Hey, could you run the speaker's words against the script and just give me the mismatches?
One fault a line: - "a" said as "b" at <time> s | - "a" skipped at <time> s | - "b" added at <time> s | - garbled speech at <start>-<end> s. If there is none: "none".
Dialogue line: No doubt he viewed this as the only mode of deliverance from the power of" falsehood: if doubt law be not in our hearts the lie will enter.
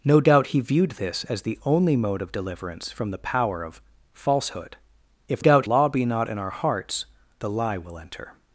none